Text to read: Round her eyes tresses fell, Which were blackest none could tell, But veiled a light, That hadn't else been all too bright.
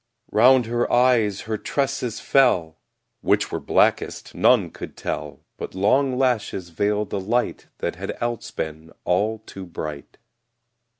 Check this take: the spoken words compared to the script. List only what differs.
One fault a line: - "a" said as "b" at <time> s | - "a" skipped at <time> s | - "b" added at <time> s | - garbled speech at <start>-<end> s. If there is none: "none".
- "her" added at 1.4 s
- "long lashes" added at 5.8 s
- "hadn't" said as "had" at 7.9 s